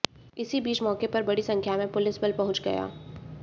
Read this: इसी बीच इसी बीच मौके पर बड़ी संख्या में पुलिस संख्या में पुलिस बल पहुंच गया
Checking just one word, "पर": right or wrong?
right